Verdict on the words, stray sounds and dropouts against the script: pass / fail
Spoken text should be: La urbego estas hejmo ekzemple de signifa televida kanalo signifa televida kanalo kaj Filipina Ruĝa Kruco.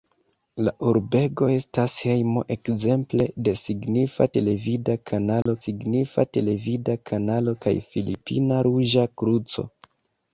fail